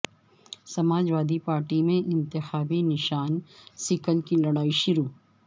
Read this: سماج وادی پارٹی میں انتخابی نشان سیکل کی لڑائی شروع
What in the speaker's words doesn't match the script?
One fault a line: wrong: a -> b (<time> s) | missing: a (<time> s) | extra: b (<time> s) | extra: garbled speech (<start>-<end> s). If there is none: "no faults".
no faults